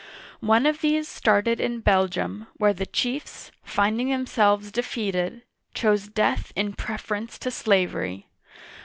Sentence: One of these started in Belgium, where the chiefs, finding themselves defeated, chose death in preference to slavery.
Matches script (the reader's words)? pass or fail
pass